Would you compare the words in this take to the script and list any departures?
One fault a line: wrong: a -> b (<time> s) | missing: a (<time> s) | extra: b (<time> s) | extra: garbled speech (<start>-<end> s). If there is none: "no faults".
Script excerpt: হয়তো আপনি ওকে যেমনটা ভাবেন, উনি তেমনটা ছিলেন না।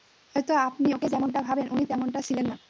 no faults